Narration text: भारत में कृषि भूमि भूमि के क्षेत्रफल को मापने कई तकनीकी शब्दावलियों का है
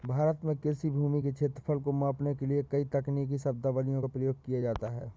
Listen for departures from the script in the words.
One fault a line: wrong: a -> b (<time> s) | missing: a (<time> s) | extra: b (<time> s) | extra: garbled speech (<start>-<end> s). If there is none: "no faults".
missing: भूमि (1.2 s)
extra: के लिए (2.3 s)
extra: प्रयोग किया जाता (4.1 s)